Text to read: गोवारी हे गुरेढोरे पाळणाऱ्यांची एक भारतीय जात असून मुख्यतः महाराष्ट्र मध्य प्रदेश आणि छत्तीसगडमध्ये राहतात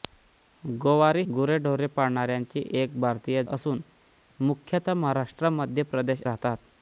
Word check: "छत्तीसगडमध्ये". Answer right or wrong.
wrong